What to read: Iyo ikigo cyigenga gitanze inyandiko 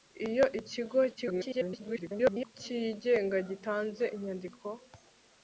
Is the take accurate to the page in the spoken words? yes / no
no